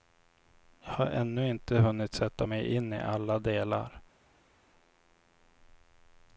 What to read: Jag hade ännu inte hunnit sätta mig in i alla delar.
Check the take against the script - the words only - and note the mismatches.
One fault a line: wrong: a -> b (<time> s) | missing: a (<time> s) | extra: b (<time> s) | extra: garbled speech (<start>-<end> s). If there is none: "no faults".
wrong: hade -> har (0.9 s)